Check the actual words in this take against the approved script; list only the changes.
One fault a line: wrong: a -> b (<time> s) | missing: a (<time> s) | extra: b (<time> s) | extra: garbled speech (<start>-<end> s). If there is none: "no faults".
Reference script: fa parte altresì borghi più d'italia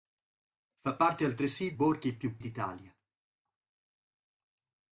no faults